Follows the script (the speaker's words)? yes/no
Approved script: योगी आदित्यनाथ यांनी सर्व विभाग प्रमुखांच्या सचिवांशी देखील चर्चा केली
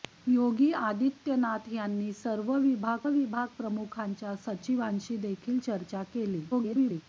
no